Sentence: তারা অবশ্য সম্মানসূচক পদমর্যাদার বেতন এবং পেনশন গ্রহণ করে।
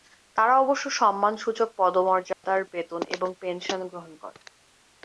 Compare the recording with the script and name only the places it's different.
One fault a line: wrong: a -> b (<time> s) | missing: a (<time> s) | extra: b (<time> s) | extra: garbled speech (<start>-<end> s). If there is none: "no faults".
no faults